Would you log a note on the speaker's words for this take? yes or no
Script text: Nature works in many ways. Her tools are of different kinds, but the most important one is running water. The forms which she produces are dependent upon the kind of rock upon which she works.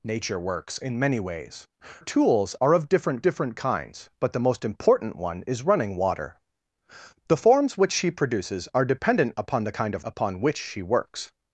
yes